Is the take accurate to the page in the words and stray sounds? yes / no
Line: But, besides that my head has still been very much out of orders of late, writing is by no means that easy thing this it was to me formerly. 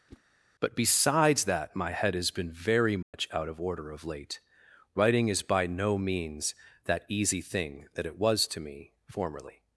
no